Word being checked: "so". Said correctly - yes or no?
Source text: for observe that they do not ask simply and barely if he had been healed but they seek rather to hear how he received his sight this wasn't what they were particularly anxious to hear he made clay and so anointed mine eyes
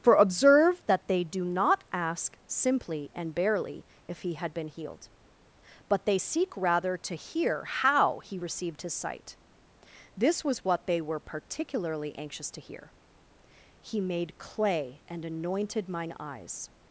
no